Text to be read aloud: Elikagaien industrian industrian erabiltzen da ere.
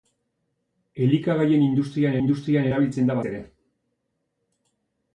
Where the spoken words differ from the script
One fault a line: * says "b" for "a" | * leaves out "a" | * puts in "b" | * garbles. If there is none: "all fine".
all fine